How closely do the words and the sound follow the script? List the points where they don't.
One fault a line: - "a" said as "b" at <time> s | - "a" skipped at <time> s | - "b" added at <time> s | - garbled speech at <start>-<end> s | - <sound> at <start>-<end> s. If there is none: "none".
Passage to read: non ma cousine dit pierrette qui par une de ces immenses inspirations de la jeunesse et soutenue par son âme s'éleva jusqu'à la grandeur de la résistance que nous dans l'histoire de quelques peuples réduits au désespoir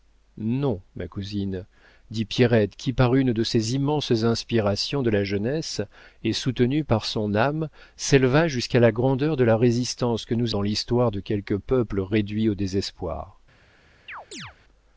- chirp at 14.1-14.5 s